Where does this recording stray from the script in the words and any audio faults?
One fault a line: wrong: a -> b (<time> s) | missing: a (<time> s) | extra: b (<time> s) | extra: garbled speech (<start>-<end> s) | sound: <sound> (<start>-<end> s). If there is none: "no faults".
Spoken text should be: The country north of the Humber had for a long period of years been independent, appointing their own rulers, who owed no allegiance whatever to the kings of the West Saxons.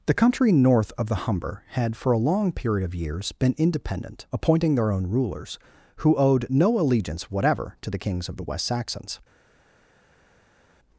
no faults